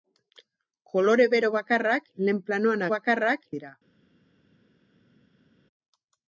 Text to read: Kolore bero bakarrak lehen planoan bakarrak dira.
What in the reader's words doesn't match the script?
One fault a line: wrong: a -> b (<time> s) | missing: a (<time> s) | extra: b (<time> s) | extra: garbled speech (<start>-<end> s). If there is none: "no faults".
no faults